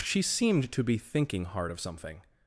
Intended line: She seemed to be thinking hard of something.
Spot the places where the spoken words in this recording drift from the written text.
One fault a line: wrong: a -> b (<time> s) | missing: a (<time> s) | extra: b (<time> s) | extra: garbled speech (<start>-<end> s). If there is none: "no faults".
no faults